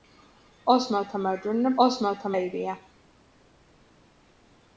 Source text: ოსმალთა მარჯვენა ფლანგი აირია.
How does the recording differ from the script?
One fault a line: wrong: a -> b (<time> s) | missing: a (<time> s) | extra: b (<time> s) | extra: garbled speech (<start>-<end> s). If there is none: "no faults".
wrong: ფლანგი -> ოსმალთა (1.9 s)